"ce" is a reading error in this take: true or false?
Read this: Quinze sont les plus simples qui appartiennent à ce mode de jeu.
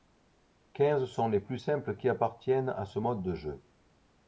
false